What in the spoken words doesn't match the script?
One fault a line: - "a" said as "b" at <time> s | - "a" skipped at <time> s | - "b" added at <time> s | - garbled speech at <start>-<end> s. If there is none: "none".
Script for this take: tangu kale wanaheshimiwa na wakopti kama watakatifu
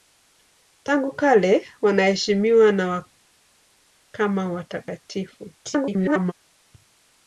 - "wakopti" skipped at 3.0 s
- garbled speech at 5.6-6.3 s